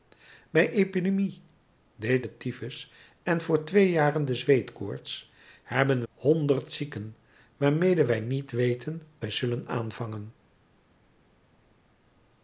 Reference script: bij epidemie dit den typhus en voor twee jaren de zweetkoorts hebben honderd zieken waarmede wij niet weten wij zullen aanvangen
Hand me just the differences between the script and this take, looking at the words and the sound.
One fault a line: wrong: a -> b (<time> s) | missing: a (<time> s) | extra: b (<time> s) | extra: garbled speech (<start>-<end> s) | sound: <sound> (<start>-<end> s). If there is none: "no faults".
no faults